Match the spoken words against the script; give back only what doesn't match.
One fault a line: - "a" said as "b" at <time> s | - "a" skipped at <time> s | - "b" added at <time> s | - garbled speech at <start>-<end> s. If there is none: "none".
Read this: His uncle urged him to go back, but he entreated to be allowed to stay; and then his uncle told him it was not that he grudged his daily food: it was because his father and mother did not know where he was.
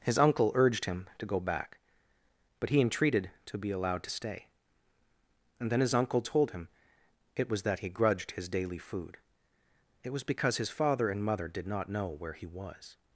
- "not" skipped at 7.6 s